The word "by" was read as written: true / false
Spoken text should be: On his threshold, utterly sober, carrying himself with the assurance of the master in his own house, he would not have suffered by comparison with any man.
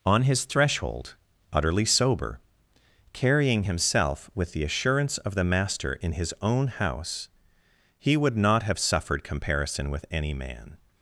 false